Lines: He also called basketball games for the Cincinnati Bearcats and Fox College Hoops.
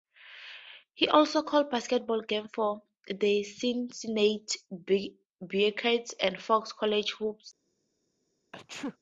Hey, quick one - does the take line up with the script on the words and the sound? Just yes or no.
no